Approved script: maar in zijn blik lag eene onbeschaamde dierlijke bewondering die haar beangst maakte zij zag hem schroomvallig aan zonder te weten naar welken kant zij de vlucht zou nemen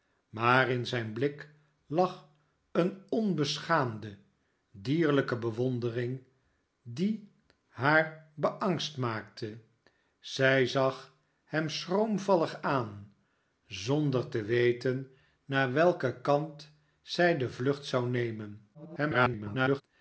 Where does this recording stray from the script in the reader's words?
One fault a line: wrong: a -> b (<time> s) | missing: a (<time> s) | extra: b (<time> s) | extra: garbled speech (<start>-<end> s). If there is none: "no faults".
extra: garbled speech (18.7-19.8 s)